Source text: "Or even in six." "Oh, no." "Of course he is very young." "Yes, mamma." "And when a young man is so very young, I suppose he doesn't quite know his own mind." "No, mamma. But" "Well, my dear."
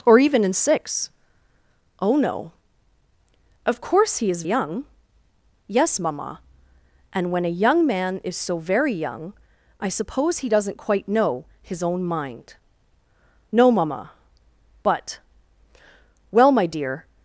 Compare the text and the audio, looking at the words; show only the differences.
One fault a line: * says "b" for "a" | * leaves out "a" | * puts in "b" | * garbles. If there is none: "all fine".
* leaves out "very"